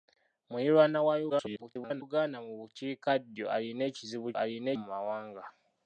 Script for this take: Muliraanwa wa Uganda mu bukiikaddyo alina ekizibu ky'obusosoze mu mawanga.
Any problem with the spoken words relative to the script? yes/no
yes